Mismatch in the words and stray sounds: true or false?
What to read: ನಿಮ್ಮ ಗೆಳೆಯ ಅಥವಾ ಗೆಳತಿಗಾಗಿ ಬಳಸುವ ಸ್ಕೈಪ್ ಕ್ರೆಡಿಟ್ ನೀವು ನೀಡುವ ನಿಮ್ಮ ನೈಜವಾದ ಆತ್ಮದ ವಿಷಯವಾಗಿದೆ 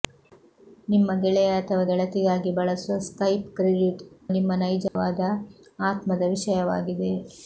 true